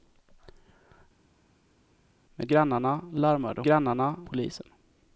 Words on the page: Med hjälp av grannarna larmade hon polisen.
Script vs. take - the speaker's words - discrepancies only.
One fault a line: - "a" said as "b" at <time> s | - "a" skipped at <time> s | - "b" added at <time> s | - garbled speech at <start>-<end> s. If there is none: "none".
- "hjälp av" skipped at 2.5 s
- "hon" said as "grannarna" at 3.6 s